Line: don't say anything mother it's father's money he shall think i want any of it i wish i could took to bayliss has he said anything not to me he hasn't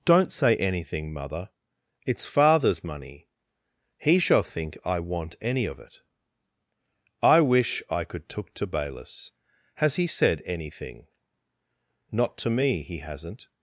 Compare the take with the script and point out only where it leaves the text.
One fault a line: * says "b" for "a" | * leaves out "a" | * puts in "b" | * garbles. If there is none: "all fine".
all fine